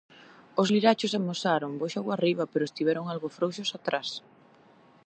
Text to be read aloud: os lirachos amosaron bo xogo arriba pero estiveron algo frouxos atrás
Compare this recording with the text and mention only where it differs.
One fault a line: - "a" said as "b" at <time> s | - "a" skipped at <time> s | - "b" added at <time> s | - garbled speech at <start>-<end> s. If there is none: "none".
none